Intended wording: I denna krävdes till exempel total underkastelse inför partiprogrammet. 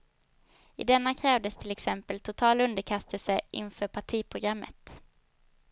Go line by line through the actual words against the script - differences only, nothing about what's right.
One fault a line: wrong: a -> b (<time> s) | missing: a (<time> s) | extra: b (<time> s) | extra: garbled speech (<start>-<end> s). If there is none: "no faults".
no faults